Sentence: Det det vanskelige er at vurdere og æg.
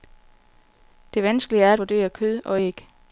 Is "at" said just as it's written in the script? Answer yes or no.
yes